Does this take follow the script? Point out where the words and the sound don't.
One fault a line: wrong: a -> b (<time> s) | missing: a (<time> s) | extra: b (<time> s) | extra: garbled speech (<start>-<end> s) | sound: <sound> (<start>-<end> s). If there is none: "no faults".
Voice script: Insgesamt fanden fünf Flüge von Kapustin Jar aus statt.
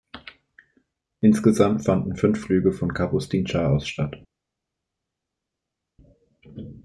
no faults